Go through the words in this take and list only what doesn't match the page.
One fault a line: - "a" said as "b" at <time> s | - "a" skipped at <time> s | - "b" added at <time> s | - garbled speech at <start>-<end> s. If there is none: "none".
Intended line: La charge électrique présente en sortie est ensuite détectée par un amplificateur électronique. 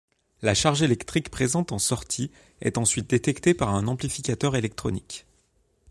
none